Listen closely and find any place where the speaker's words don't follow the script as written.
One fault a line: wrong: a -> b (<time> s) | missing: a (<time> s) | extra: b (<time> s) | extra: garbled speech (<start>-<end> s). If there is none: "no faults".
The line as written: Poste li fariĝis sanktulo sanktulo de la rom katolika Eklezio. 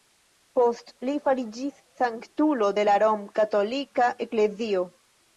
missing: sanktulo (2.7 s)